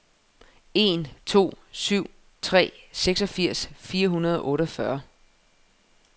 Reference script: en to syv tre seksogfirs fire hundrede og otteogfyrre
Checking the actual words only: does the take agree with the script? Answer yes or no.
yes